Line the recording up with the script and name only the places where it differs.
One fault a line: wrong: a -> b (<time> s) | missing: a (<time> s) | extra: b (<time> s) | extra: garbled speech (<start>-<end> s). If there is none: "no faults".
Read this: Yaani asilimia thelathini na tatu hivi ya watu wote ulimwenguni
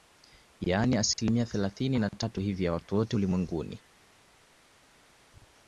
no faults